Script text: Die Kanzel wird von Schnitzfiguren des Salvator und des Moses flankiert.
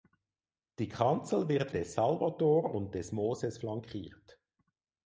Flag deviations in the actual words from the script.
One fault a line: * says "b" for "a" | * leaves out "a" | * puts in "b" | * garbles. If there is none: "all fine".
* leaves out "von Schnitzfiguren"